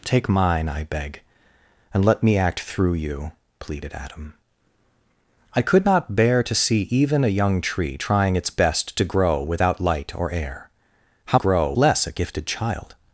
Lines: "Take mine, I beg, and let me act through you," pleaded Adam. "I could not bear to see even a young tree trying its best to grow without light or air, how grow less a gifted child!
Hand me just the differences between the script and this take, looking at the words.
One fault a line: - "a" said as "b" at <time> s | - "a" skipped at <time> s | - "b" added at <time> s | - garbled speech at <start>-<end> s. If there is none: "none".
none